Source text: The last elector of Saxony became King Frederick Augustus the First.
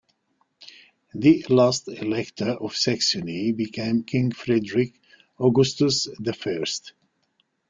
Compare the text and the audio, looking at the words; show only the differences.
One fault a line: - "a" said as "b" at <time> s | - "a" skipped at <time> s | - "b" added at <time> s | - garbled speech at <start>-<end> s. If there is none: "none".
none